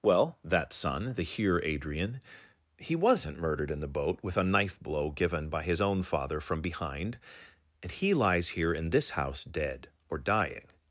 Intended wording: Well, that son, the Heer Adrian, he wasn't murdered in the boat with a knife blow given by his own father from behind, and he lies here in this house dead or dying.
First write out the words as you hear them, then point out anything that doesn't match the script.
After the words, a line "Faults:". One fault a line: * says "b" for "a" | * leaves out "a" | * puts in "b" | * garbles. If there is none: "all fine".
Well, that son, the Heer Adrian, he wasn't murdered in the boat with a knife blow given by his own father from behind, and he lies here in this house dead or dying.
Faults:
all fine